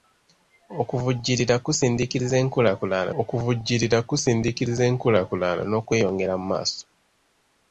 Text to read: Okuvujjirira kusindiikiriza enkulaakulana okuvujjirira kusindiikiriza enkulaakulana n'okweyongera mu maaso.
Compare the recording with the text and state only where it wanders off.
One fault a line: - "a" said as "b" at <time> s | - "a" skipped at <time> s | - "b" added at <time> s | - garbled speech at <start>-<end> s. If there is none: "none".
none